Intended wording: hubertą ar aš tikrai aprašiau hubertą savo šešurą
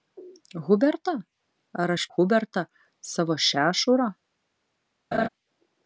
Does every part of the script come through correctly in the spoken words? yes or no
no